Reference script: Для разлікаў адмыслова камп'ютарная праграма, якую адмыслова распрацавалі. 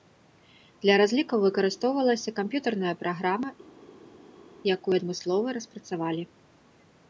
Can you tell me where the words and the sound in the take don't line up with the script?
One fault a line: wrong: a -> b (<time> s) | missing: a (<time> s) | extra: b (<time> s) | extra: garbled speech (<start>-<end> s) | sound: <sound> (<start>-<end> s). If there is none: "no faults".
wrong: адмыслова -> выкарыстоўвалася (1.5 s)